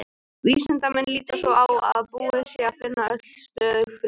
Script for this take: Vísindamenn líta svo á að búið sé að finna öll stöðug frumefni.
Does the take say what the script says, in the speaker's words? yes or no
yes